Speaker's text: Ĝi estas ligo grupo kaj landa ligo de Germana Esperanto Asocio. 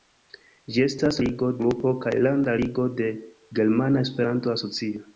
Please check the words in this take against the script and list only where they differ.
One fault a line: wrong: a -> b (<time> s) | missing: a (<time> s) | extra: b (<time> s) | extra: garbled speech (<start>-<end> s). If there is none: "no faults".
no faults